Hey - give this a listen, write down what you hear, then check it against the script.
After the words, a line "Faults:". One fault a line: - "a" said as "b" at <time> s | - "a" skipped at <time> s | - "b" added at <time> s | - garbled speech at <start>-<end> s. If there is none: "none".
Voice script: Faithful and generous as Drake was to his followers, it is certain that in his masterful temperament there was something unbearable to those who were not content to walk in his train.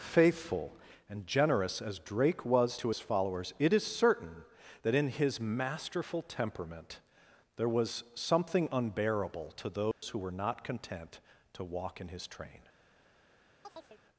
Faithful and generous as Drake was to his followers, it is certain that in his masterful temperament there was something unbearable to those who were not content to walk in his train.
Faults:
none